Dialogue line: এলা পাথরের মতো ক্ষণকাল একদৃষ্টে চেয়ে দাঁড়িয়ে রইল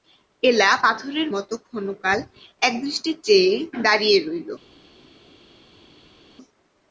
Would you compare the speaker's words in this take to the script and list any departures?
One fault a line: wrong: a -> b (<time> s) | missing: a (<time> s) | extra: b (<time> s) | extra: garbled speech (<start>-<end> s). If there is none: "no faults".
no faults